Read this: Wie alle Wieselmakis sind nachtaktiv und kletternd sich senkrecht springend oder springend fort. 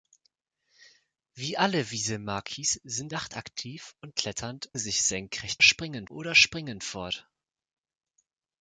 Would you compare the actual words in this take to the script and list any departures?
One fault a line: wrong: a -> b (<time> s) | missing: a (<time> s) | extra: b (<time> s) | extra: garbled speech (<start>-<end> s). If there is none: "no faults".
no faults